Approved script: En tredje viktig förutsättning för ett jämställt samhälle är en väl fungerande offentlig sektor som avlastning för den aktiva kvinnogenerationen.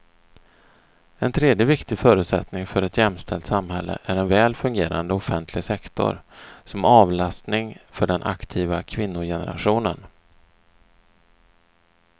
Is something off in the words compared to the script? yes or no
no